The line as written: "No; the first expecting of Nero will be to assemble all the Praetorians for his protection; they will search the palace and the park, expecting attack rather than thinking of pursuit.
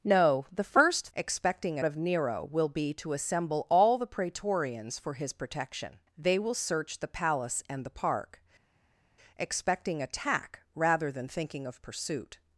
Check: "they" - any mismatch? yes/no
no